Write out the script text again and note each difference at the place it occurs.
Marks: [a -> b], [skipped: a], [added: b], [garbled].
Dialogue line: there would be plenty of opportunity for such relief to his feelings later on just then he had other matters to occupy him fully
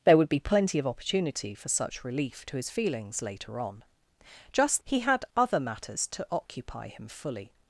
there would be plenty of opportunity for such relief to his feelings later on just [skipped: then] he had other matters to occupy him fully